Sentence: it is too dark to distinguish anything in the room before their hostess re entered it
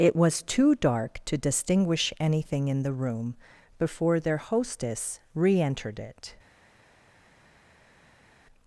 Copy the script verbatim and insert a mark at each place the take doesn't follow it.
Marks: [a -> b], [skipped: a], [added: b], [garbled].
it [is -> was] too dark to distinguish anything in the room before their hostess re entered it